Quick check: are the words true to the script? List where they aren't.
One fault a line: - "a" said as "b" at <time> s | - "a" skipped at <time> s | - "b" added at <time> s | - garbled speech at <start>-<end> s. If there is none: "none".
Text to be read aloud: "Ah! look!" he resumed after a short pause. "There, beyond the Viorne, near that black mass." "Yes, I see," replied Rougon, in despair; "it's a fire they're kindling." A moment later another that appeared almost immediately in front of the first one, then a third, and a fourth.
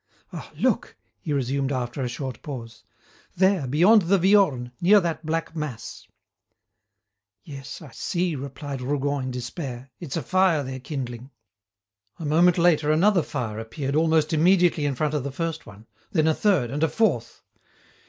- "that" said as "fire" at 13.2 s